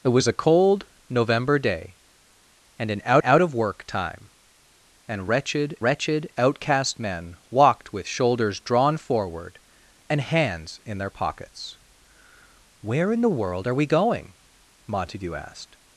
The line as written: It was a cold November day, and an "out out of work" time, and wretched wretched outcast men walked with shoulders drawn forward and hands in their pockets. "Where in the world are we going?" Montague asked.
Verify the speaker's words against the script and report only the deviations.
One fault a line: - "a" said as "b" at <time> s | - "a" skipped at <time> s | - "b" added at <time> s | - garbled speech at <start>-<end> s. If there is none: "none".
none